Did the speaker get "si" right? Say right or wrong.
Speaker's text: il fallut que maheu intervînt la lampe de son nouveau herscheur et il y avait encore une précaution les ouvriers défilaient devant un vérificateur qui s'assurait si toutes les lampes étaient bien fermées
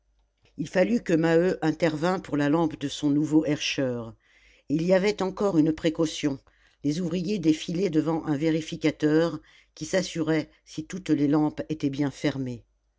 right